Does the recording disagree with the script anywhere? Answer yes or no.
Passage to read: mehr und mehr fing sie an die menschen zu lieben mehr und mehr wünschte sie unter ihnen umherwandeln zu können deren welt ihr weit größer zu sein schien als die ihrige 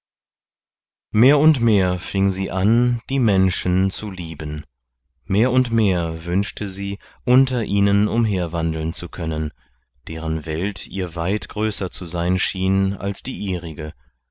no